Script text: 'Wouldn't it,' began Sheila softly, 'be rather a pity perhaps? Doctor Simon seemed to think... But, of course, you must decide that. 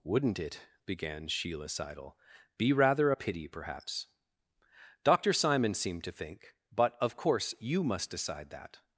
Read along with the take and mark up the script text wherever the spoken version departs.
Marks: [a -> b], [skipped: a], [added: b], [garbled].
'Wouldn't it,' began Sheila [softly, -> seidel] 'be rather a pity perhaps? Doctor Simon seemed to think... But, of course, you must decide that.